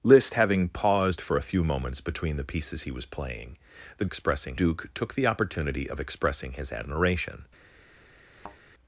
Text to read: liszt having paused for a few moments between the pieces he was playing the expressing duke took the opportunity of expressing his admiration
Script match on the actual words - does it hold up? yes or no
yes